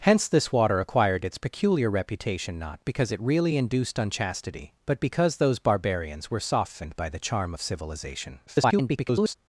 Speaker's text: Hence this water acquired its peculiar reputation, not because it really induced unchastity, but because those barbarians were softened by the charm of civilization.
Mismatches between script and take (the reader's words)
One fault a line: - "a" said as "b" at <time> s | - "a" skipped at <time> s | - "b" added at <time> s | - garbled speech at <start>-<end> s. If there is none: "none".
- garbled speech at 8.5-9.3 s